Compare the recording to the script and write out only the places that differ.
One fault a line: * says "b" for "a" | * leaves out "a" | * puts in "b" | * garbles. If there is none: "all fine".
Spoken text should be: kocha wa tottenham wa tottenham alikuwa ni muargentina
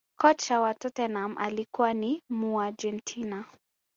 * leaves out "wa tottenham"